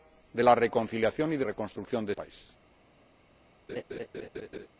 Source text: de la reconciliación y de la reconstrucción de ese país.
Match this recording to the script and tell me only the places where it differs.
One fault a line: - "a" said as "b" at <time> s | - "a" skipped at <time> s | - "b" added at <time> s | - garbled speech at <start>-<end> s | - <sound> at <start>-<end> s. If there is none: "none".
- "la" skipped at 1.4 s
- "ese" skipped at 2.1 s
- laugh at 3.7-4.7 s